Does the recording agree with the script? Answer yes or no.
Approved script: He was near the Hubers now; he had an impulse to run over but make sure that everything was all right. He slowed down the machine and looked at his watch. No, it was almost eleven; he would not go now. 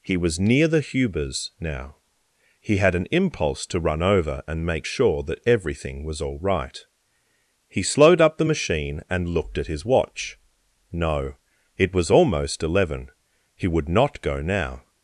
no